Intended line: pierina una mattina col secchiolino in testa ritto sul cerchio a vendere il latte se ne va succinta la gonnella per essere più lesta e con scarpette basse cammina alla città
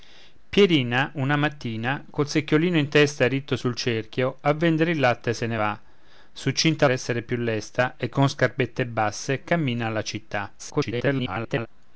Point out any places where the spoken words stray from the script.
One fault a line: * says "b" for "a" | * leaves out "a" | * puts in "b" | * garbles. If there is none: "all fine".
* leaves out "la gonnella per"
* garbles